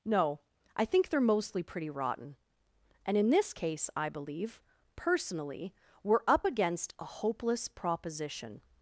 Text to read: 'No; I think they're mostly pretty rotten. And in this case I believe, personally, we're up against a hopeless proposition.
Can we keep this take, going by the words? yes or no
yes